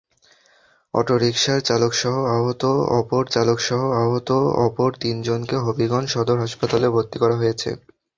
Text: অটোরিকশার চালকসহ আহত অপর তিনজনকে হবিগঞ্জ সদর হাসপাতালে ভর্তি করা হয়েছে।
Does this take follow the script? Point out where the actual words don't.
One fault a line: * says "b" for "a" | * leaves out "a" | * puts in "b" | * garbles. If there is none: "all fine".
* puts in "চালকসহ আহত অপর"